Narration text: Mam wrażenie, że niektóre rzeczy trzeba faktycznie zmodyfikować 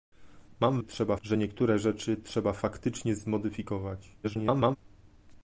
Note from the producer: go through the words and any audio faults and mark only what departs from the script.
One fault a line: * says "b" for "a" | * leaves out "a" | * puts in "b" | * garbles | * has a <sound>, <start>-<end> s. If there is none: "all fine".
* says "trzeba" for "wrażenie"
* garbles